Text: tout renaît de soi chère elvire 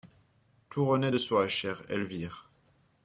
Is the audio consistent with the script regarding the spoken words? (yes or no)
yes